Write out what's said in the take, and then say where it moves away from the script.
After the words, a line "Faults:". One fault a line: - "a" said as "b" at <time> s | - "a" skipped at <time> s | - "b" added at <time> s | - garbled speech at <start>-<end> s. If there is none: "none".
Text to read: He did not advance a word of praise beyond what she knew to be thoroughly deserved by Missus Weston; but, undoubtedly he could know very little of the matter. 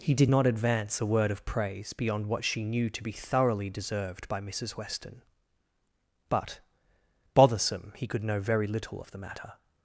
He did not advance a word of praise beyond what she knew to be thoroughly deserved by Missus Weston; but, bothersome he could know very little of the matter.
Faults:
- "undoubtedly" said as "bothersome" at 7.3 s